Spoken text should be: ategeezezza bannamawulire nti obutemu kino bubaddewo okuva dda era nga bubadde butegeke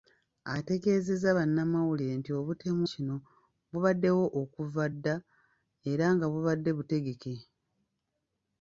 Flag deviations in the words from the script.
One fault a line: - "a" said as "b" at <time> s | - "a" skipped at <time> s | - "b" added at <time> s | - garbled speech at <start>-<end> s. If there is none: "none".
none